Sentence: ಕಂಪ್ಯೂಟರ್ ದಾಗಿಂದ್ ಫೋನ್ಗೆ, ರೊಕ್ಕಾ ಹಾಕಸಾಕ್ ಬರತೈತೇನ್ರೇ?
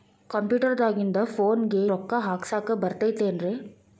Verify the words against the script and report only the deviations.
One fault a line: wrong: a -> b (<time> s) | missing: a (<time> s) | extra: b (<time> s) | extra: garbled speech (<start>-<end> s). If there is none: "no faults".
no faults